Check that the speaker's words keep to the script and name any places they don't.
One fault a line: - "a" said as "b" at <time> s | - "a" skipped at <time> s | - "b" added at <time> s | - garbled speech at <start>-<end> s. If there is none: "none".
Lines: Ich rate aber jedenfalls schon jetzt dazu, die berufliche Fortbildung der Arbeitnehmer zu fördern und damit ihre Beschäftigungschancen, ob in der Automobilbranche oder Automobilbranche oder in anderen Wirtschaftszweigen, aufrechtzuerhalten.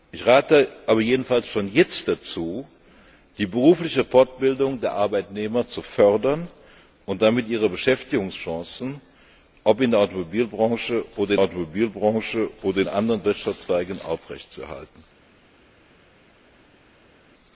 none